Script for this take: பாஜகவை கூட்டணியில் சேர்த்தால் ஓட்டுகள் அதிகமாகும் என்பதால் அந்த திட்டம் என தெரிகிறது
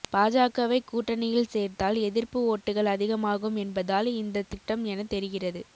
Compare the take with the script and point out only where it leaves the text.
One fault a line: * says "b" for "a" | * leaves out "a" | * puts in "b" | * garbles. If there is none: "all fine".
* puts in "எதிர்ப்பு"
* says "இந்த" for "அந்த"